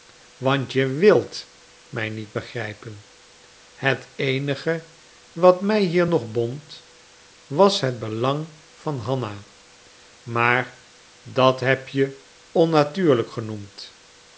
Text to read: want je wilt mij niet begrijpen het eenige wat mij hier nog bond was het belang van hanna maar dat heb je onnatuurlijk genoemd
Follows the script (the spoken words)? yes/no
yes